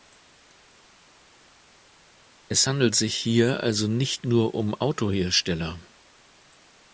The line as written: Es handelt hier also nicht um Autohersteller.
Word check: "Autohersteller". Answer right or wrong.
right